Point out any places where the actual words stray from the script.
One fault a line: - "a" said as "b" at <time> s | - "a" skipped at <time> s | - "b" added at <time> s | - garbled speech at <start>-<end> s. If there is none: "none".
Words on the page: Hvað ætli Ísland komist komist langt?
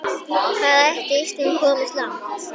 - "komist" skipped at 1.9 s